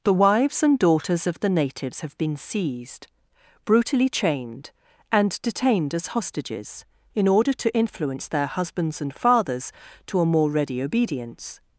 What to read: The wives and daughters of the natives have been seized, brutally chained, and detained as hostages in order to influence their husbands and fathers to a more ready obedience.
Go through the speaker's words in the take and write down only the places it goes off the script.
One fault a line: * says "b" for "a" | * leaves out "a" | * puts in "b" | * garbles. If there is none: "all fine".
all fine